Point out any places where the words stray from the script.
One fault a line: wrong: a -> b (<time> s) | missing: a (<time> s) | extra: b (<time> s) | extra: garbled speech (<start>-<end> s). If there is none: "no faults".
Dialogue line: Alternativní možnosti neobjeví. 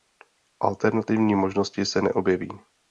extra: se (1.9 s)